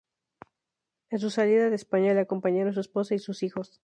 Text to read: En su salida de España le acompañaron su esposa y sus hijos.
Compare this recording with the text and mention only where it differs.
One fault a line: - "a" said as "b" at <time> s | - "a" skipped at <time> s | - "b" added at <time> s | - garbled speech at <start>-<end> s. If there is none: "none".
none